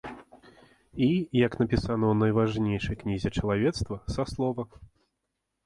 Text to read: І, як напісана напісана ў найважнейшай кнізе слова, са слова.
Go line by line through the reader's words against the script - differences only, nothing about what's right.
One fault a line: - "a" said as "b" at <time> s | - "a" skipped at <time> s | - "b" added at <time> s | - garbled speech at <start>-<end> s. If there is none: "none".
- "напісана" skipped at 2.0 s
- "слова" said as "чалавецтва" at 3.4 s